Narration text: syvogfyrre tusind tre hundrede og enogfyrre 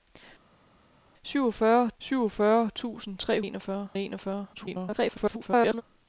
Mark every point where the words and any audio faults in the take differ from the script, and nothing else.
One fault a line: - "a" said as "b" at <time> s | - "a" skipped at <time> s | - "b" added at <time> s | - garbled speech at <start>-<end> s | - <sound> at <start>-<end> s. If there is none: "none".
- "syvogfyrre" added at 2.0 s
- "hundrede" said as "enogfyrre" at 3.4 s
- garbled speech at 4.5-5.8 s